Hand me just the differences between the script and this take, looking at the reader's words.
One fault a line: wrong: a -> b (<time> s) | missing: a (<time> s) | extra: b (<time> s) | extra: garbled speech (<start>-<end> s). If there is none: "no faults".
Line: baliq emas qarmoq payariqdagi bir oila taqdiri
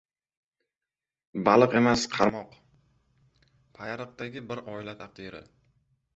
no faults